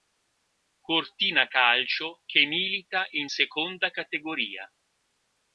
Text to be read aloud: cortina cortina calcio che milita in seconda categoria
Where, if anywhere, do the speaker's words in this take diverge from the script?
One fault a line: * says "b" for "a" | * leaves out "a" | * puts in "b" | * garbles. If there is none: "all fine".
* leaves out "cortina"